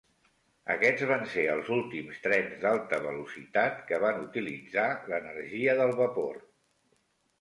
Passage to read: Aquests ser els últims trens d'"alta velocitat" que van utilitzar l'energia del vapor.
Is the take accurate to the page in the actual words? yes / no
no